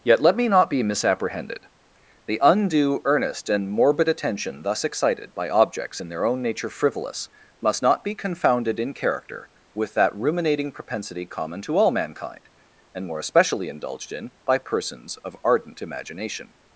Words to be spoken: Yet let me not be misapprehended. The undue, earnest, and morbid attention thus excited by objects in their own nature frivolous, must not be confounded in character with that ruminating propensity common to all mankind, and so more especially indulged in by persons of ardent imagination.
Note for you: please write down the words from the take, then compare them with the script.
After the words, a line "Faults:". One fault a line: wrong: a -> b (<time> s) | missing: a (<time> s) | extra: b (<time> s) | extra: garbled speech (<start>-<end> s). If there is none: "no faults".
Yet let me not be misapprehended. The undue, earnest, and morbid attention thus excited by objects in their own nature frivolous, must not be confounded in character with that ruminating propensity common to all mankind, and more especially indulged in by persons of ardent imagination.
Faults:
missing: so (13.1 s)